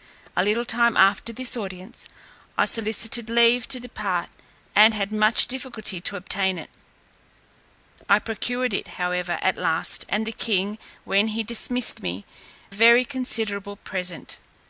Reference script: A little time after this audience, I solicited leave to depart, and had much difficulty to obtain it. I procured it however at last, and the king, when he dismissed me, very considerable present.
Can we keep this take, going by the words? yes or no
yes